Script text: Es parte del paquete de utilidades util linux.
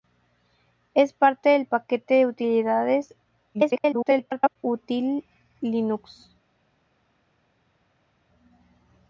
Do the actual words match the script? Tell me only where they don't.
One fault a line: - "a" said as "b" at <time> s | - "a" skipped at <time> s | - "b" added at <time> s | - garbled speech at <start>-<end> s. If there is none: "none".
- garbled speech at 3.5-4.6 s